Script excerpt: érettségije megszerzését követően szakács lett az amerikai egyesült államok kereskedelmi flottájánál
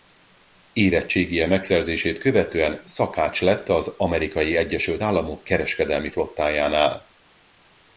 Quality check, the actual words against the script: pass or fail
pass